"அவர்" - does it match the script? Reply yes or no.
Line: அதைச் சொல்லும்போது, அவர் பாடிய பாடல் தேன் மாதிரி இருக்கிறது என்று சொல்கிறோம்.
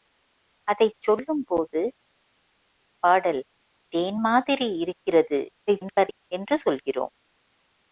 no